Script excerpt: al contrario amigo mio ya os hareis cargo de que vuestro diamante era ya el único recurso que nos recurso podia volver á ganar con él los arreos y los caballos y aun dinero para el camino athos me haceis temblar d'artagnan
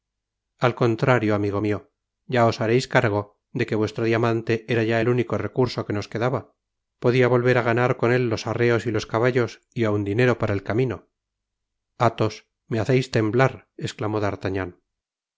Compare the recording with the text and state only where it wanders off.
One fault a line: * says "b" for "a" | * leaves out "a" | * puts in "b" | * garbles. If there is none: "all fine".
* says "quedaba" for "recurso"
* puts in "esclamó"